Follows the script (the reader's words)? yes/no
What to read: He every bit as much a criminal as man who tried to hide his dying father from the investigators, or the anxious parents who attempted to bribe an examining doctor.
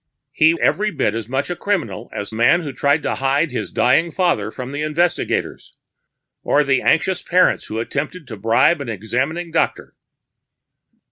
yes